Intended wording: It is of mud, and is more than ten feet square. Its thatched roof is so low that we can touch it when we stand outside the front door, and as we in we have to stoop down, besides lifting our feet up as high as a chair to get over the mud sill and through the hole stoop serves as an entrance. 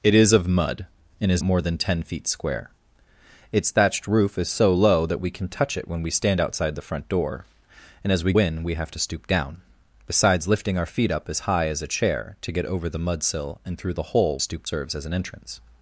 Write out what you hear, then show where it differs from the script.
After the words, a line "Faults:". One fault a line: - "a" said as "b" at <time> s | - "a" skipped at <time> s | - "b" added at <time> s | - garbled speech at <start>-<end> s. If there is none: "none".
It is of mud, and is more than ten feet square. Its thatched roof is so low that we can touch it when we stand outside the front door, and as we in we have to stoop down, besides lifting our feet up as high as a chair to get over the mud sill and through the hole stoop serves as an entrance.
Faults:
none